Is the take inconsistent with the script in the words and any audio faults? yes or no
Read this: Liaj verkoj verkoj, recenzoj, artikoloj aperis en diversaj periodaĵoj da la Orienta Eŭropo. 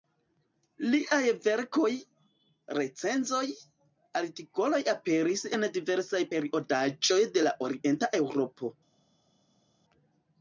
yes